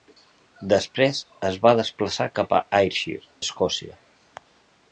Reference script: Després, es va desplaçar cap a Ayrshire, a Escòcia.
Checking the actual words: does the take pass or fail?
fail